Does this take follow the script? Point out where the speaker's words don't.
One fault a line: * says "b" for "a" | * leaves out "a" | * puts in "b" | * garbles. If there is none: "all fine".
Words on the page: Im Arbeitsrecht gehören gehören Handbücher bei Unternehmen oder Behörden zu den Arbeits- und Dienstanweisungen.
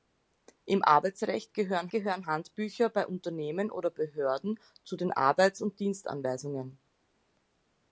all fine